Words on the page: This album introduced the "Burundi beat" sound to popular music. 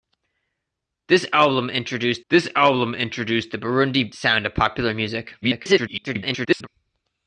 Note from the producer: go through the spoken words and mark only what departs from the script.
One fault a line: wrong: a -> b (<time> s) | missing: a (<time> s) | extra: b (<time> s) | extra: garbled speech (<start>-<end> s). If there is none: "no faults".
extra: this album introduced (2.3 s)
missing: beat (4.1 s)
extra: garbled speech (5.4-6.7 s)